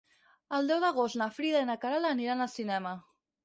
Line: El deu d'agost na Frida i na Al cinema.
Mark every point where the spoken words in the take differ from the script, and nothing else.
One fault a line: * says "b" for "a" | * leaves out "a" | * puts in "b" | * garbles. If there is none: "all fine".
* puts in "Queralt aniran"